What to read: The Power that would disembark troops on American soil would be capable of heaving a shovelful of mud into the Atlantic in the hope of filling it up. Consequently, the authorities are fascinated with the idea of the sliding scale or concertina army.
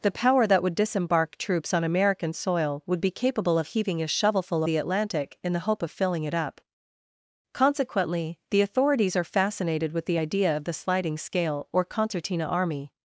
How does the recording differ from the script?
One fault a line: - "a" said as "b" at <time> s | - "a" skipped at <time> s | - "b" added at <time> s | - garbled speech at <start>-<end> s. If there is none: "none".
- "of mud into" skipped at 4.6 s